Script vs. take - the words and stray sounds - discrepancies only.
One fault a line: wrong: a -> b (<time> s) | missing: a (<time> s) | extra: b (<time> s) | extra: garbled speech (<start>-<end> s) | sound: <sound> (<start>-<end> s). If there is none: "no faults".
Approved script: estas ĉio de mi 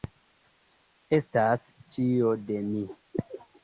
no faults